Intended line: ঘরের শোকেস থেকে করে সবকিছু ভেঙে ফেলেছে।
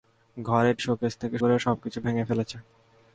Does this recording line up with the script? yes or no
yes